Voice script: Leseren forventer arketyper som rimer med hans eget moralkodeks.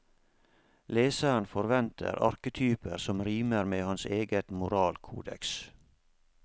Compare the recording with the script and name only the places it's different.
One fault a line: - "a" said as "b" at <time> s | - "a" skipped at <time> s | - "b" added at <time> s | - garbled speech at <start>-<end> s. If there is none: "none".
none